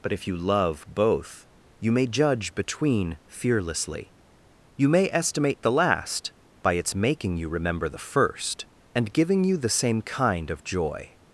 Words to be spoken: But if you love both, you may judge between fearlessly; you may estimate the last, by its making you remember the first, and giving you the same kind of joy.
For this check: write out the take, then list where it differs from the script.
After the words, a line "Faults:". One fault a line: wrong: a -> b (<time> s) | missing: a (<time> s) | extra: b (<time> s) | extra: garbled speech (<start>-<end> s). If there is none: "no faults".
But if you love both, you may judge between fearlessly; you may estimate the last, by its making you remember the first, and giving you the same kind of joy.
Faults:
no faults